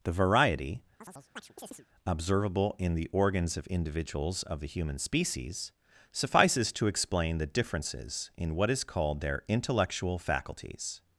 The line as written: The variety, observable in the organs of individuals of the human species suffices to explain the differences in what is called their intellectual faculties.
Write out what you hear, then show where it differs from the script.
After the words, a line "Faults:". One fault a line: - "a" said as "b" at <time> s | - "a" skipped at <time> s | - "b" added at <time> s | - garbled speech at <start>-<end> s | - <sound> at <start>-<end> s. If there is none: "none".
The variety, observable in the organs of individuals of the human species suffices to explain the differences in what is called their intellectual faculties.
Faults:
- chirp at 1.0-1.9 s